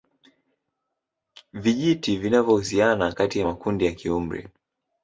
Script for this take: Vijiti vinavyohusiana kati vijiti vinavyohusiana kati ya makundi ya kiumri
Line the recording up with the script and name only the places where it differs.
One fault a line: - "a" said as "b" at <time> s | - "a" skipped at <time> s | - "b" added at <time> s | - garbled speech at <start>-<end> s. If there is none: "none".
- "vijiti vinavyohusiana kati" skipped at 3.4 s